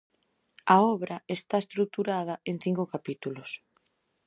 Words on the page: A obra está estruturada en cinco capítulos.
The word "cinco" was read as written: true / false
true